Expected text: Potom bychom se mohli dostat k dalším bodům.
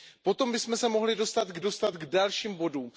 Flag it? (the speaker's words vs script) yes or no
yes